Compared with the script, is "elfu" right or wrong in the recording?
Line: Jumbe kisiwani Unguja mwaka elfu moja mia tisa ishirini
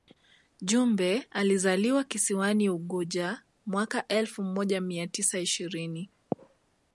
right